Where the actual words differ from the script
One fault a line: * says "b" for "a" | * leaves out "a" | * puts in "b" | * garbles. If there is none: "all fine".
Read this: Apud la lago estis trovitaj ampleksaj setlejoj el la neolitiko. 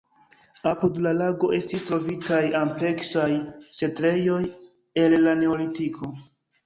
all fine